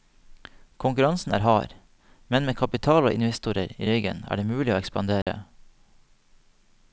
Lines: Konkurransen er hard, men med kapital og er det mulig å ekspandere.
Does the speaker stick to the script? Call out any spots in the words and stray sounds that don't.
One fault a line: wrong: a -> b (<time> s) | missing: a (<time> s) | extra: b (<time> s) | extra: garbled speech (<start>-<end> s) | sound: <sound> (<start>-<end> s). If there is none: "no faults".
extra: investorer i ryggen (3.2 s)
sound: dropout (5.2-5.3 s)